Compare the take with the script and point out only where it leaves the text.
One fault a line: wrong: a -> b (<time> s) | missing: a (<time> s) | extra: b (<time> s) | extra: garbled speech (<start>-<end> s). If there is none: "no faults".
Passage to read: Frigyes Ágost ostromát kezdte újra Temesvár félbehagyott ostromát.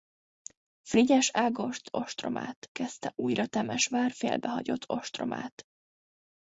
no faults